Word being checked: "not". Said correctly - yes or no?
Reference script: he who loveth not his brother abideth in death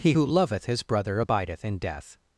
no